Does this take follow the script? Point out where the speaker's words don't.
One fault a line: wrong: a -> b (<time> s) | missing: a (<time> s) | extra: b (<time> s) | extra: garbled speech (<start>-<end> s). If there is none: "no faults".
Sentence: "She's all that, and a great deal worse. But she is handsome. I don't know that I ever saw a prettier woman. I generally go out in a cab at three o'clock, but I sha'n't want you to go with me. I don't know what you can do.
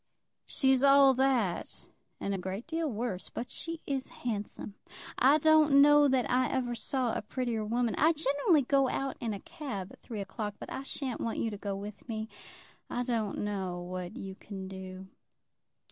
no faults